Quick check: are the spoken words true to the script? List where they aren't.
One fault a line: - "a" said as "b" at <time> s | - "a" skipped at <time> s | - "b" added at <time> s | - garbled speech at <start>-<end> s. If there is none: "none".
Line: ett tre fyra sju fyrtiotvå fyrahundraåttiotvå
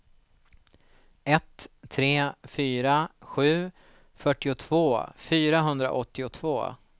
none